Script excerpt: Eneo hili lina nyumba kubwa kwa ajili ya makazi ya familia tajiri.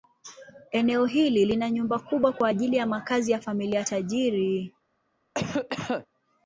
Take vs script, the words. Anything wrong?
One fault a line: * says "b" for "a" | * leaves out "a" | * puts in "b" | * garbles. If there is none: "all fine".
all fine